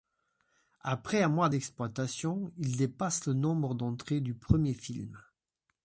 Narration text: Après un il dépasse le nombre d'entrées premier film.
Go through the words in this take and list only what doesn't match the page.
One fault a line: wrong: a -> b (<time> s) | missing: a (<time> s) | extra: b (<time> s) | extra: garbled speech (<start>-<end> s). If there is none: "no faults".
extra: mois d'exploitation (1.3 s)
extra: du (4.2 s)